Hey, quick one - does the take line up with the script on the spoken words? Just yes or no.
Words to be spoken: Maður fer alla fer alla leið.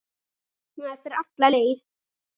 no